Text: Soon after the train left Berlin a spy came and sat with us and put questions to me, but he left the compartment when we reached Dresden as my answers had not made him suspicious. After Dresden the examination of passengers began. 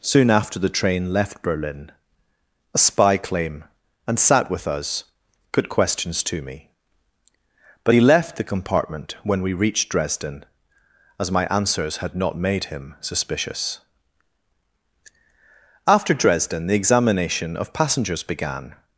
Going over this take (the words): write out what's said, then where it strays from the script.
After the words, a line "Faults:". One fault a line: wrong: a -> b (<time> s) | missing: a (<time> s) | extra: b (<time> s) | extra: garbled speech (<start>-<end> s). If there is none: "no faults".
Soon after the train left Berlin a spy claim and sat with us put questions to me, but he left the compartment when we reached Dresden as my answers had not made him suspicious. After Dresden the examination of passengers began.
Faults:
wrong: came -> claim (3.2 s)
missing: and (5.0 s)